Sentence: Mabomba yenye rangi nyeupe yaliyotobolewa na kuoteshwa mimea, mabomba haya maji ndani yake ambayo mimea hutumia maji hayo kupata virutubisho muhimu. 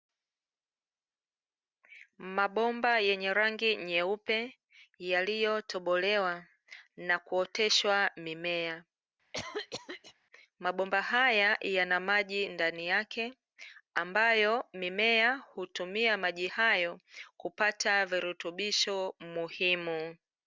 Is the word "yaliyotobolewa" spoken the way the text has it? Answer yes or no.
yes